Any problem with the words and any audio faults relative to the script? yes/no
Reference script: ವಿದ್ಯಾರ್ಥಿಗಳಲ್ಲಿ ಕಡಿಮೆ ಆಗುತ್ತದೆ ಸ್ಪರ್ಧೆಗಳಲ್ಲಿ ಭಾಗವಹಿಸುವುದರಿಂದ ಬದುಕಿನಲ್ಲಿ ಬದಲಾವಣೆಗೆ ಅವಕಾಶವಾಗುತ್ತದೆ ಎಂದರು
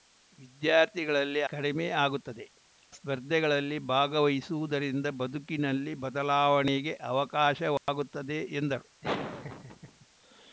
yes